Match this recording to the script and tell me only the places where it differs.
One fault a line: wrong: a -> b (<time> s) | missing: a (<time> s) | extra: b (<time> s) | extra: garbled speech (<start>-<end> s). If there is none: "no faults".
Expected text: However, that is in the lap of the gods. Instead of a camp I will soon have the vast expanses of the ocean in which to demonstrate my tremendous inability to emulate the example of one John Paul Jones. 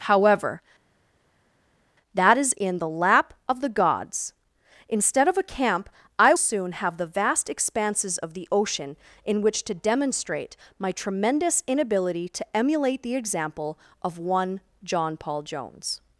missing: will (6.3 s)